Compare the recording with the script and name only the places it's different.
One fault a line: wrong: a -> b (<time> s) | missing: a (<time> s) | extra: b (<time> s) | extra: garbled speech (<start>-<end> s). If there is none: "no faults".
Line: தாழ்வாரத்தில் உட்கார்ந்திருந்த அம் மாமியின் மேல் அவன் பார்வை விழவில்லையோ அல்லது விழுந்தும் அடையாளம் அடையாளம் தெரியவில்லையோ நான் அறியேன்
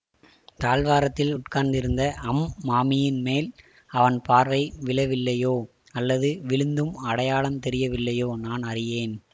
missing: அடையாளம் (7.6 s)